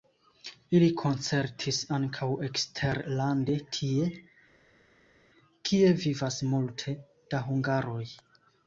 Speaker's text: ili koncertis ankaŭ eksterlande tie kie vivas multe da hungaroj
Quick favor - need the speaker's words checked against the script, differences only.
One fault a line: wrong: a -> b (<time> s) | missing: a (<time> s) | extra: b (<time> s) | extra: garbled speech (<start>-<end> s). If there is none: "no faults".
no faults